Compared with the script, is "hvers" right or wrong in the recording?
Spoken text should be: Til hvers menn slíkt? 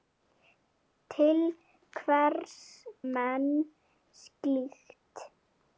right